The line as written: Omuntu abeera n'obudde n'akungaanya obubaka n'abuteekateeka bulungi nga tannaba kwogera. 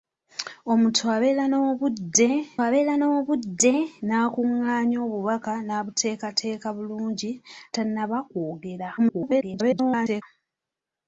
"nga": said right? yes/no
no